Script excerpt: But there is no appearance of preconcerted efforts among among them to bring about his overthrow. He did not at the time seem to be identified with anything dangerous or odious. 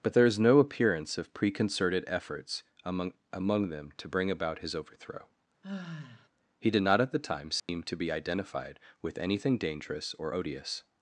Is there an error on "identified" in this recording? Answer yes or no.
no